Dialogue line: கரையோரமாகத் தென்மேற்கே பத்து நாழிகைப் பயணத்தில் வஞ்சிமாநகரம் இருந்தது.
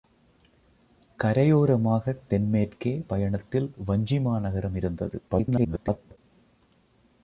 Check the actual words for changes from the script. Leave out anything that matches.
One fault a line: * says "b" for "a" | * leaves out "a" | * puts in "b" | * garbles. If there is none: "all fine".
* leaves out "பத்து நாழிகைப்"
* garbles